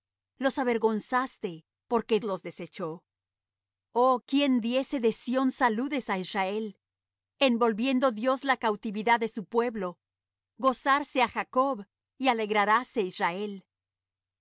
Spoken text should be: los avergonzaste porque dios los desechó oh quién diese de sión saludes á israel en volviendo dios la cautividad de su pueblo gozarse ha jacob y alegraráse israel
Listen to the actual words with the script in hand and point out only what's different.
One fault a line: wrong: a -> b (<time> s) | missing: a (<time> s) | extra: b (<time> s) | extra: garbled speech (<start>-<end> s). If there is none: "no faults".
missing: dios (2.2 s)